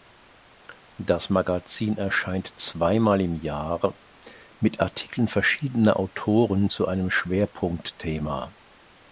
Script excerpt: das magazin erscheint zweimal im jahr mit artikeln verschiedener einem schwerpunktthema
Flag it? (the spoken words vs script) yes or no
yes